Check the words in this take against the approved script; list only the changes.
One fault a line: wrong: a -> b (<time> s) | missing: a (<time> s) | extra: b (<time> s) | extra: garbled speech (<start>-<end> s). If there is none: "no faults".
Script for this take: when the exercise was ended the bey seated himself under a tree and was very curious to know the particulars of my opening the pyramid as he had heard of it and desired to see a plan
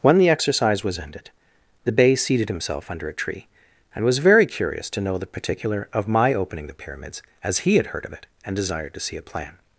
wrong: particulars -> particular (5.2 s)
wrong: pyramid -> pyramids (6.7 s)